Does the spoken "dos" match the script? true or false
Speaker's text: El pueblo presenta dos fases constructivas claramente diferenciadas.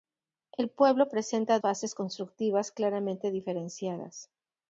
false